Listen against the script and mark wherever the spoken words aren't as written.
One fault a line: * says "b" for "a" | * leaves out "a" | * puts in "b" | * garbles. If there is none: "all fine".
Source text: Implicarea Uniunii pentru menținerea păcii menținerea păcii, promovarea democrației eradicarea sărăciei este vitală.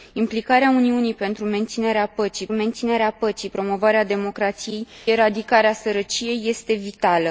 all fine